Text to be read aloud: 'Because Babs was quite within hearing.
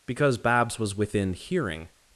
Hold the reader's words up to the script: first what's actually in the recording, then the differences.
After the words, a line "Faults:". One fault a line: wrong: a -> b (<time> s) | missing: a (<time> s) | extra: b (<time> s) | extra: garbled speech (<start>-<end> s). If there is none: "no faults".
'Because Babs was within hearing.
Faults:
missing: quite (0.9 s)